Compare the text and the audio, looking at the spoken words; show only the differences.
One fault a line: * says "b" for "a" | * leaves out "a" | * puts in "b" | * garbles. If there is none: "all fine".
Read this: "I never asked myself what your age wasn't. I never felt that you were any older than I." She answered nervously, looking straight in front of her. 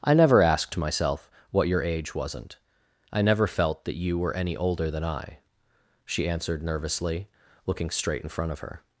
all fine